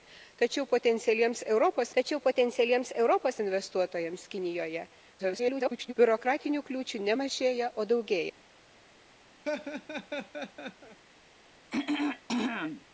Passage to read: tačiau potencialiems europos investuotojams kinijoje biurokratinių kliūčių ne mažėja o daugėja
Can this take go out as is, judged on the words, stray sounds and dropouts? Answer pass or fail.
fail